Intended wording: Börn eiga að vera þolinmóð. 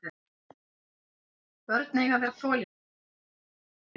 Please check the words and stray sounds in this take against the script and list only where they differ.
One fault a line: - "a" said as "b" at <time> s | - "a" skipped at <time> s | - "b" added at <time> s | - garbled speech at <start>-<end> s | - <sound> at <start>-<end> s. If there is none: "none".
none